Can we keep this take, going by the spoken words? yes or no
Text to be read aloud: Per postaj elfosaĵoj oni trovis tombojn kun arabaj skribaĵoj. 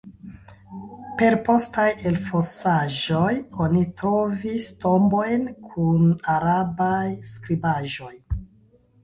yes